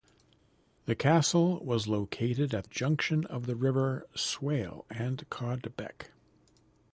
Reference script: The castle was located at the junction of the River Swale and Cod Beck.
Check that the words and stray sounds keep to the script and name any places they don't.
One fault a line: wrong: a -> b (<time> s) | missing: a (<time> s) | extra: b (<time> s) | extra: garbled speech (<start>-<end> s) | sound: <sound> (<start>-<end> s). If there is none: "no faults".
missing: the (2.7 s)